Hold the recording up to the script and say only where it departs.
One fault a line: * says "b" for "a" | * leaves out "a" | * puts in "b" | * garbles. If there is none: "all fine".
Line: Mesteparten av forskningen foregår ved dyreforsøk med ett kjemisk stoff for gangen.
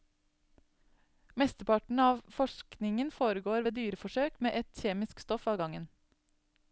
* says "av" for "for"